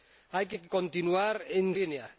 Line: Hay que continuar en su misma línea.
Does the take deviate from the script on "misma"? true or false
true